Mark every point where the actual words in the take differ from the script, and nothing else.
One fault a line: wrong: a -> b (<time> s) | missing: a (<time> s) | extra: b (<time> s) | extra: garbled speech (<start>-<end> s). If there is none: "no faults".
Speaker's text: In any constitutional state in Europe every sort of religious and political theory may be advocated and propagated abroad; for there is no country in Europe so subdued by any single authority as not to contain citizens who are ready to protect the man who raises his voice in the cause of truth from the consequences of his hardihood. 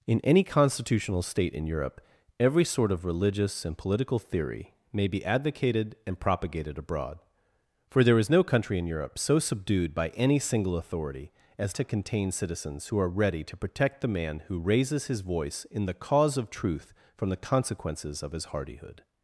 missing: not (11.8 s)